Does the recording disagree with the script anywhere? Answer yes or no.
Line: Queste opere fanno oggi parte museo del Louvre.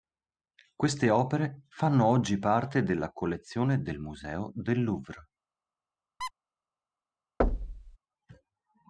yes